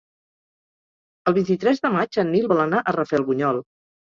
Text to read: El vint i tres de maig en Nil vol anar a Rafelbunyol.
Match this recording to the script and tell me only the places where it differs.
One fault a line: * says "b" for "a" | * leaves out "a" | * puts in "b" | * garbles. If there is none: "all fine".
all fine